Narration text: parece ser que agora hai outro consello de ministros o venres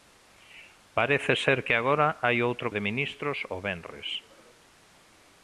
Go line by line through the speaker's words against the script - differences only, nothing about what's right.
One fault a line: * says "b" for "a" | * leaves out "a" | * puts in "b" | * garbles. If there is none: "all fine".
* leaves out "consello"